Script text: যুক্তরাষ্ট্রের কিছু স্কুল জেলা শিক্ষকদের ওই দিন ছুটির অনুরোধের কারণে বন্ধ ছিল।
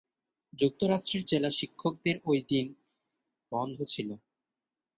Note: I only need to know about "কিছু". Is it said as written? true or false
false